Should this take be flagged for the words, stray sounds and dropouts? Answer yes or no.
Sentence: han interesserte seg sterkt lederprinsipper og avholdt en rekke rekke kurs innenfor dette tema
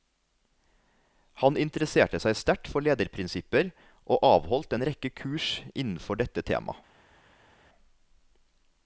yes